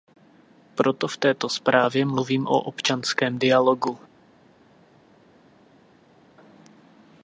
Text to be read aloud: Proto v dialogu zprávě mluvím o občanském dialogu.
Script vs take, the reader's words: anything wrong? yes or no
yes